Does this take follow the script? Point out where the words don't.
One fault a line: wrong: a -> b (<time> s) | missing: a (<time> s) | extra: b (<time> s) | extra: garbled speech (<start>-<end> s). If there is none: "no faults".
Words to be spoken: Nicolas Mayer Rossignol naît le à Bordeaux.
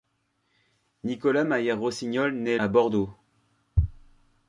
missing: le (2.6 s)